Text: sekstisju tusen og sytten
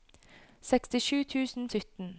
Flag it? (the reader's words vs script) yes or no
no